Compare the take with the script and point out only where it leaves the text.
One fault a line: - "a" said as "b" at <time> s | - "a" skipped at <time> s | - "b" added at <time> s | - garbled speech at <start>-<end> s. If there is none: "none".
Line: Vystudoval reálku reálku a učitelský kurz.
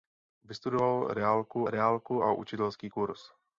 none